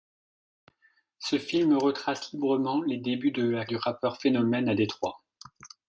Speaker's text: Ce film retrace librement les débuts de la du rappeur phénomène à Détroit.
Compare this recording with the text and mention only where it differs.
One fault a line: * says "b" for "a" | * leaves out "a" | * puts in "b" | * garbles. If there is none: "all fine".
all fine